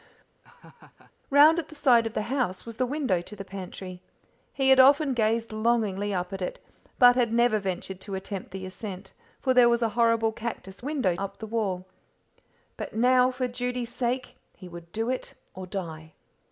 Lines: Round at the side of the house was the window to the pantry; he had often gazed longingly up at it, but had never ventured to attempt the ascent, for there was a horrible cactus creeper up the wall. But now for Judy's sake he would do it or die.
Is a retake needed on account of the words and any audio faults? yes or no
yes